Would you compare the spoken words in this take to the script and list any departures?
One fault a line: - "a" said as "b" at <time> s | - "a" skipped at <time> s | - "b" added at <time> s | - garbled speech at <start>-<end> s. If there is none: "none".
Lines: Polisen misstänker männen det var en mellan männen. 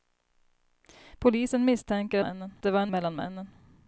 none